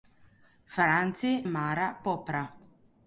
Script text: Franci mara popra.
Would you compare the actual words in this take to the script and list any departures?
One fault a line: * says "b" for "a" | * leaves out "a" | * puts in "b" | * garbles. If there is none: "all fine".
all fine